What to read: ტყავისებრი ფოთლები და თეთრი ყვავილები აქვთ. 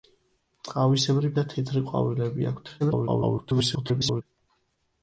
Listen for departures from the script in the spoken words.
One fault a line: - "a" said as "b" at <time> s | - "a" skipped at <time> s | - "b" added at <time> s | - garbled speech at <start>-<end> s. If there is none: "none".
- "ფოთლები" skipped at 1.3 s
- garbled speech at 2.8-4.2 s